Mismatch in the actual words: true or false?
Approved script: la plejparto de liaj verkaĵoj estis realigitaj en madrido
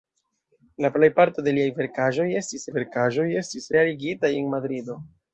true